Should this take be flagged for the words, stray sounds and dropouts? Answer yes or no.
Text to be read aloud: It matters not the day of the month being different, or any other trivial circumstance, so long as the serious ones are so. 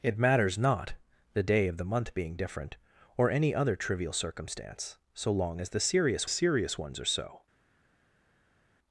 yes